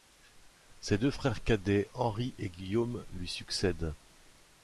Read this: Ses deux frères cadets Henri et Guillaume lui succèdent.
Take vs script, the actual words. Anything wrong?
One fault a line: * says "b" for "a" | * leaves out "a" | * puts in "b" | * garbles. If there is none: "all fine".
all fine